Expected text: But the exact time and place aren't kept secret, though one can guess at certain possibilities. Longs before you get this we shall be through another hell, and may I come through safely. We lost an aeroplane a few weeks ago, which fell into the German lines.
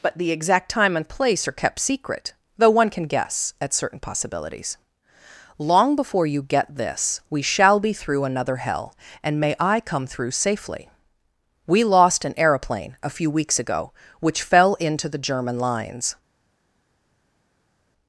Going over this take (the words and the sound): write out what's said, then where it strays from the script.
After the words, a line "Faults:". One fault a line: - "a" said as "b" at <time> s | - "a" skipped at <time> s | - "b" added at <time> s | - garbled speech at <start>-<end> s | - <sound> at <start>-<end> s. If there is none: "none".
But the exact time and place are kept secret, though one can guess at certain possibilities. Long before you get this we shall be through another hell, and may I come through safely. We lost an aeroplane a few weeks ago, which fell into the German lines.
Faults:
- "aren't" said as "are" at 1.5 s
- "Longs" said as "Long" at 5.6 s